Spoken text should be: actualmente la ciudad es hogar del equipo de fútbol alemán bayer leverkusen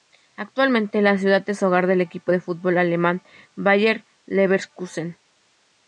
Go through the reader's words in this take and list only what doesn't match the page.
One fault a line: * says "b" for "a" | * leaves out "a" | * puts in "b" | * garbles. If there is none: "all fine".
all fine